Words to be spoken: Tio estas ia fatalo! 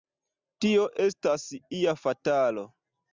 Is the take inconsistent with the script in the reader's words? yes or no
no